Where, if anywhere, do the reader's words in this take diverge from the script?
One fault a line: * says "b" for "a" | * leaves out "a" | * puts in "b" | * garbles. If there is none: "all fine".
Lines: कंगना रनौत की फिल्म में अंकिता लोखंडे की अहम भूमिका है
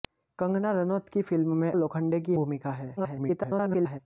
* leaves out "अंकिता"
* leaves out "अहम"
* garbles